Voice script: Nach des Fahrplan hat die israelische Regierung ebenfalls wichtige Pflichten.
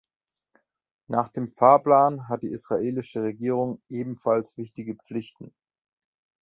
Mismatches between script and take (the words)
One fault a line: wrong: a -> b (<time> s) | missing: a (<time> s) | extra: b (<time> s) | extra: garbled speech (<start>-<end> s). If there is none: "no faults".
wrong: des -> dem (1.3 s)